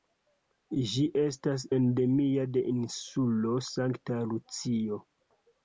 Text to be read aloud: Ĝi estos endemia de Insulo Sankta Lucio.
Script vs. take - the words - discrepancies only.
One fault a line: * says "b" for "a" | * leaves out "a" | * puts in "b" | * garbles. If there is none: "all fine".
* says "estas" for "estos"